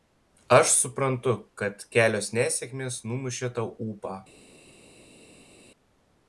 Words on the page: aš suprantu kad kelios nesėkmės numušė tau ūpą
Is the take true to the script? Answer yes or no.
yes